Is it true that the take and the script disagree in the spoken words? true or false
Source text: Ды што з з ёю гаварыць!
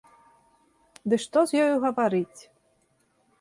true